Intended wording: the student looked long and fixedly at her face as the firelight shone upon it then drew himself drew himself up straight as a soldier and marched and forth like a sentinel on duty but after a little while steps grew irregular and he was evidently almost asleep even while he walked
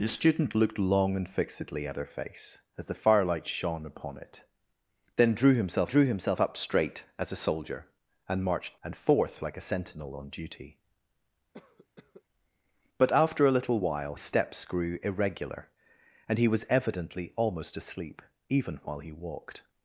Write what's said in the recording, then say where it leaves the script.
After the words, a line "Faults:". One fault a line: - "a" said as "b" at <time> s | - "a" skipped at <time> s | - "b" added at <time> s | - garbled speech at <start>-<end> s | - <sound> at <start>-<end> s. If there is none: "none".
the student looked long and fixedly at her face as the firelight shone upon it then drew himself drew himself up straight as a soldier and marched and forth like a sentinel on duty but after a little while steps grew irregular and he was evidently almost asleep even while he walked
Faults:
- cough at 11.5-12.2 s